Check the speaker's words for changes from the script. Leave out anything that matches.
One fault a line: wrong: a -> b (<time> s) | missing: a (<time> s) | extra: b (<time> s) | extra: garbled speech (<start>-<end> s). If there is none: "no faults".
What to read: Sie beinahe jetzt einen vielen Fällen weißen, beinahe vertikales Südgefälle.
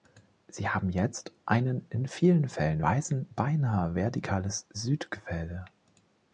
wrong: beinahe -> haben (0.7 s)
extra: in (1.9 s)